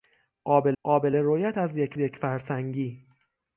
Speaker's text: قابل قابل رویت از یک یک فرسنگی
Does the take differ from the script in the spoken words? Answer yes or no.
no